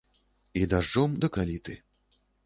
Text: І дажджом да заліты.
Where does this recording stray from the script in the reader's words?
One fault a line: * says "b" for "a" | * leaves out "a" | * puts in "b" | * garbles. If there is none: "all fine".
all fine